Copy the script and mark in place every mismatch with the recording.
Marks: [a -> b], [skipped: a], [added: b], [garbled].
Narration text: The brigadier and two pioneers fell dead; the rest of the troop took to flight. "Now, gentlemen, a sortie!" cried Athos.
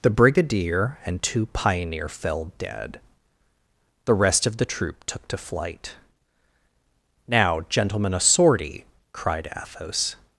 The brigadier and two [pioneers -> pioneer] fell dead; the rest of the troop took to flight. "Now, gentlemen, a sortie!" cried Athos.